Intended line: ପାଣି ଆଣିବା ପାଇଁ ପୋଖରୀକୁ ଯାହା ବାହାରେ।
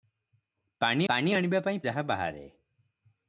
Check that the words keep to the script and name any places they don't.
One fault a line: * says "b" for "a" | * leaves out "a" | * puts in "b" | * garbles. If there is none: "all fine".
* puts in "ପାଣି"
* leaves out "ପୋଖରୀକୁ"